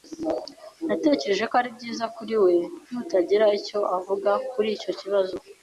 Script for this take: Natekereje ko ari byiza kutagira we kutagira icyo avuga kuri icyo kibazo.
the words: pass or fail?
fail